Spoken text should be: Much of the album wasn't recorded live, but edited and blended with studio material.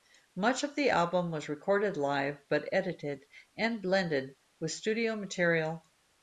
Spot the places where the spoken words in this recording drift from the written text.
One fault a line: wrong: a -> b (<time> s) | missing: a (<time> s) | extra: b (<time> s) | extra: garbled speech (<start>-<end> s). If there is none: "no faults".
wrong: wasn't -> was (1.3 s)